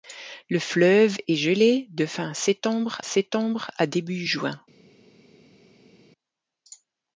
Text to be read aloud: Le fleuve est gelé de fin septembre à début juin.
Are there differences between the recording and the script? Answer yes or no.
yes